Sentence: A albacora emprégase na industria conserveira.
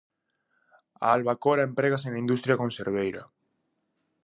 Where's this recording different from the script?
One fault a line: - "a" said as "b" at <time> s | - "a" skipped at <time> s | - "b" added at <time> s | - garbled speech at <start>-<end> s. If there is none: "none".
none